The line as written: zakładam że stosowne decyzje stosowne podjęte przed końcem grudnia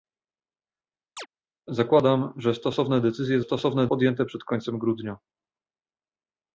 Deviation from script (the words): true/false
false